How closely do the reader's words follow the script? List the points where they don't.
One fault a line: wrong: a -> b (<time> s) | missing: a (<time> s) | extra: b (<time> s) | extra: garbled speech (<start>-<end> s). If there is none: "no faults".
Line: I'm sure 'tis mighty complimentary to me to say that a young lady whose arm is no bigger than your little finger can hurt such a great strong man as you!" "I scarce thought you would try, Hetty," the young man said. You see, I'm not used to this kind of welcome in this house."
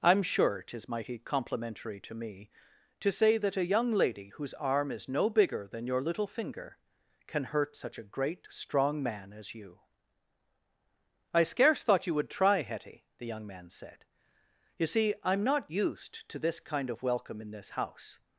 no faults